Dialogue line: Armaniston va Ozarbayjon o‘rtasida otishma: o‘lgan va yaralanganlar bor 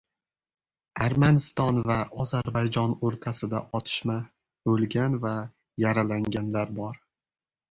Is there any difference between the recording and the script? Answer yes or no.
no